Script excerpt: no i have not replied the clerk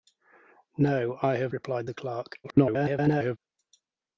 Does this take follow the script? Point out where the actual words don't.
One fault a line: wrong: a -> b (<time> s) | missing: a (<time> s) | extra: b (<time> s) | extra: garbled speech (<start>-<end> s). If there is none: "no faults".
missing: not (1.5 s)
extra: garbled speech (2.4-3.4 s)